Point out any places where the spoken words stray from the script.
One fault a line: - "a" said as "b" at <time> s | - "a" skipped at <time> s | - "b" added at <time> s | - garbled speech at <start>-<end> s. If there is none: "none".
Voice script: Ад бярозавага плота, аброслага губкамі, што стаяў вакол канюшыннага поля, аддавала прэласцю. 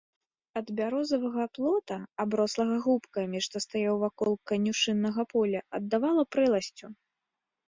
none